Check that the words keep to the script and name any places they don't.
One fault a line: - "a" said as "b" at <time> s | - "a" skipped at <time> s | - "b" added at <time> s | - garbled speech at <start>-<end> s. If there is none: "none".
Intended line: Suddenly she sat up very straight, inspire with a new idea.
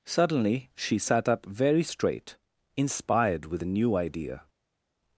- "inspire" said as "inspired" at 2.8 s